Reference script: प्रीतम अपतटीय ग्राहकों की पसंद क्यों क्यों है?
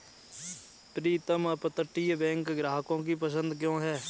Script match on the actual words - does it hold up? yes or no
no